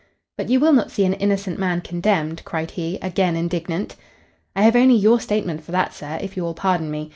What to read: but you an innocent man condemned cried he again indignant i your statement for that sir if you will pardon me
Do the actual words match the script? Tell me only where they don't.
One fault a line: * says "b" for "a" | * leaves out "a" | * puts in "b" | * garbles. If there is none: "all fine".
* puts in "will not see"
* puts in "have only"